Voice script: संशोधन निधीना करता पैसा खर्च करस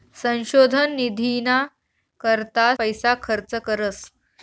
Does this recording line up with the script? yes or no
yes